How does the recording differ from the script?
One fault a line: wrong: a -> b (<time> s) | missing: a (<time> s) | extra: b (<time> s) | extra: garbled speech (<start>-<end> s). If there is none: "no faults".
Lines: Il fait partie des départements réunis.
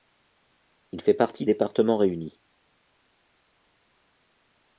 missing: des (1.4 s)